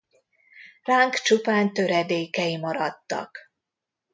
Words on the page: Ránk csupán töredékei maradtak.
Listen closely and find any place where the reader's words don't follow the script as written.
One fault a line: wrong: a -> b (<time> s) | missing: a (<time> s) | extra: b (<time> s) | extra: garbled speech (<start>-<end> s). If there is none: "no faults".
no faults